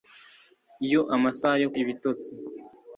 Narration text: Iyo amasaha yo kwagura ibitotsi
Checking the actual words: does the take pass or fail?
fail